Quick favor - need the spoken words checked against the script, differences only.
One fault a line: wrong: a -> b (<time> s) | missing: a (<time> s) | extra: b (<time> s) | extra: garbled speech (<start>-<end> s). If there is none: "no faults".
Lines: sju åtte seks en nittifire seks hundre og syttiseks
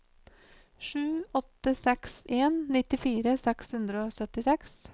no faults